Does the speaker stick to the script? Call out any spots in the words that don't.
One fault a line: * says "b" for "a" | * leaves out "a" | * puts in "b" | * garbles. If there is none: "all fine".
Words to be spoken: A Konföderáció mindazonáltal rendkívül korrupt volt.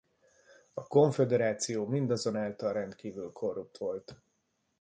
all fine